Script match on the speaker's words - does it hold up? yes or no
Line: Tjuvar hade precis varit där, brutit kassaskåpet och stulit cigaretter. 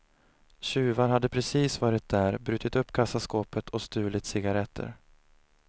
no